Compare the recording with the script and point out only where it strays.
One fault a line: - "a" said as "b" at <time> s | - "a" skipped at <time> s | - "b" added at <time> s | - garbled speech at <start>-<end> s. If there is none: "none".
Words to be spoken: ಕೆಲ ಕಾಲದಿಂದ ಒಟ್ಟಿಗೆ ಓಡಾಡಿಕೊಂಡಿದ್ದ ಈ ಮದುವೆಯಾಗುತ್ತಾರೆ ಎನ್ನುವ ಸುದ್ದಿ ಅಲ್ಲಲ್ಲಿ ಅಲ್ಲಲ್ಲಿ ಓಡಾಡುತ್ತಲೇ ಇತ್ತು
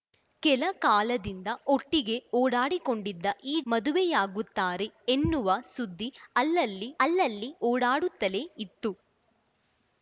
none